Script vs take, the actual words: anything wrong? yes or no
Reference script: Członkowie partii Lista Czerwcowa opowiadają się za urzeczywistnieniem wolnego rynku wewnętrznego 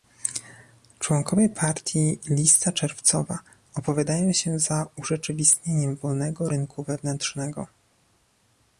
no